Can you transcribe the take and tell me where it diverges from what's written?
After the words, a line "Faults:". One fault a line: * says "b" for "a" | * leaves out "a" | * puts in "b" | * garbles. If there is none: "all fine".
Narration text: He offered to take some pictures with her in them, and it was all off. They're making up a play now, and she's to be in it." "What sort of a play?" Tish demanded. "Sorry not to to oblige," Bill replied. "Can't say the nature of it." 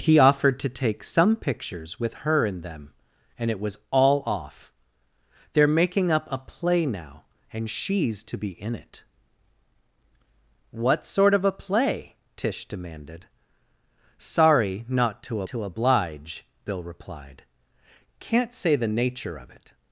He offered to take some pictures with her in them, and it was all off. They're making up a play now, and she's to be in it." "What sort of a play?" Tish demanded. "Sorry not to to oblige," Bill replied. "Can't say the nature of it."
Faults:
all fine